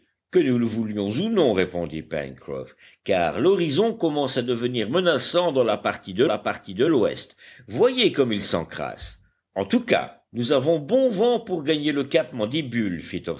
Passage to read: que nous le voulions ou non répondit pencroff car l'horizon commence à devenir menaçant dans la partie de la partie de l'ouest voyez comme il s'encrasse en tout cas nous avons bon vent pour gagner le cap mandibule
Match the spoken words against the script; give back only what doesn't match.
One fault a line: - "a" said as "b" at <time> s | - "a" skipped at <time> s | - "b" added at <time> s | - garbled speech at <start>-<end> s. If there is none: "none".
none